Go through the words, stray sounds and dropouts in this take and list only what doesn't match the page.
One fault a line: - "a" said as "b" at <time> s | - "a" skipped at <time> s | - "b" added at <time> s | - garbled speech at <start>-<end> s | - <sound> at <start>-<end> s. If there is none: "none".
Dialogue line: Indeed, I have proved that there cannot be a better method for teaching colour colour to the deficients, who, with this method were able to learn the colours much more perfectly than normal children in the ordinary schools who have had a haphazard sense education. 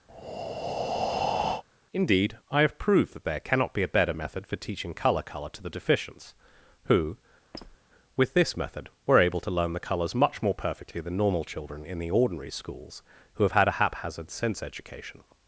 - breath at 0.1-1.6 s
- squeak at 7.5-7.8 s